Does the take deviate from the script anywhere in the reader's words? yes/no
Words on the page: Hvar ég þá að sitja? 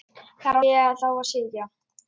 no